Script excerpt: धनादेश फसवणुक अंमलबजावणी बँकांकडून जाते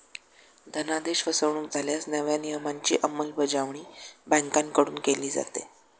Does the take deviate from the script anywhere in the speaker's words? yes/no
yes